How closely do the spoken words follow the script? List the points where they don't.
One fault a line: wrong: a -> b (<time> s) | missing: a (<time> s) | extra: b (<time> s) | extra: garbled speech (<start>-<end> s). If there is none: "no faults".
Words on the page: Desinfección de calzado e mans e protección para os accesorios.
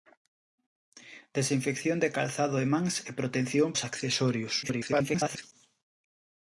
missing: para (3.7 s)
extra: garbled speech (4.6-5.4 s)